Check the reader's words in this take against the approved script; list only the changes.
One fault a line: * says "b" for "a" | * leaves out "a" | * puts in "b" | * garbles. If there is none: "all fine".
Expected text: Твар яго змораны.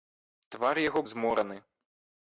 all fine